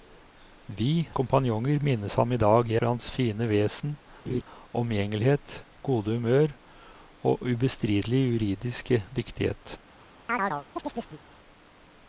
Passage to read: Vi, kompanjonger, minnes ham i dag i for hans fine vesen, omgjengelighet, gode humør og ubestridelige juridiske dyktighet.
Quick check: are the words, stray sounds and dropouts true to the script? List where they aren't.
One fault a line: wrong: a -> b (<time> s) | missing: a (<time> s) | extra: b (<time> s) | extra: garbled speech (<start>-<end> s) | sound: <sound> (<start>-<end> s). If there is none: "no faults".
sound: laugh (4.3-4.4 s)
sound: chirp (10.3-11.2 s)